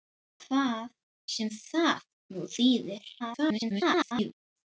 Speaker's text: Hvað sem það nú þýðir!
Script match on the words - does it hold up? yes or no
no